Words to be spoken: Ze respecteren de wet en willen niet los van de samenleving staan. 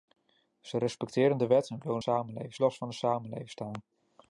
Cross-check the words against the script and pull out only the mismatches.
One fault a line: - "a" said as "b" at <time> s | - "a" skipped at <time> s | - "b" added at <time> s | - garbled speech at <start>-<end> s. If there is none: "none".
- "niet" said as "samenleving" at 2.0 s